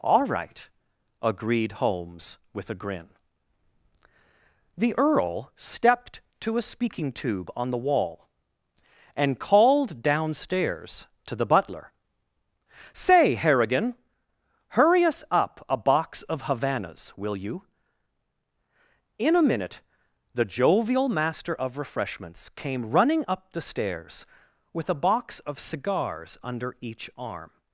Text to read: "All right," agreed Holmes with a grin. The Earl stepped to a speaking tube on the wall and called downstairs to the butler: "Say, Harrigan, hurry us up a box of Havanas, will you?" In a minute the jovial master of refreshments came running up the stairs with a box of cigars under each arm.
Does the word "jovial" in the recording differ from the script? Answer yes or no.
no